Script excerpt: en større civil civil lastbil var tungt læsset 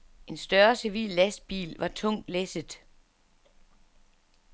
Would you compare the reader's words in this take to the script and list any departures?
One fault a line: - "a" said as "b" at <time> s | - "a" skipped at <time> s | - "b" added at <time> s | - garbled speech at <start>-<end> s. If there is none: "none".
- "civil" skipped at 1.1 s